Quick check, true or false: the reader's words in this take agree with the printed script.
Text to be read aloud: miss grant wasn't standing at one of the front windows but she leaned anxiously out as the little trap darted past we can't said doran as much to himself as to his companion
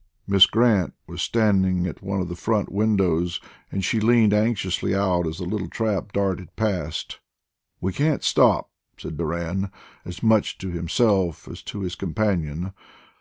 false